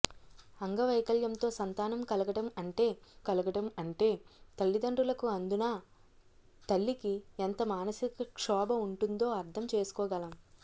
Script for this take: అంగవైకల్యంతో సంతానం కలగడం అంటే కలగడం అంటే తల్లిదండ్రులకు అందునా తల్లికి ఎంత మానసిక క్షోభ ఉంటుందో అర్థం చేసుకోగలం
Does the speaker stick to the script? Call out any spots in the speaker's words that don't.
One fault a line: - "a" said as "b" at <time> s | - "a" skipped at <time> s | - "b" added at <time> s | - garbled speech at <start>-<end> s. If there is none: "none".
none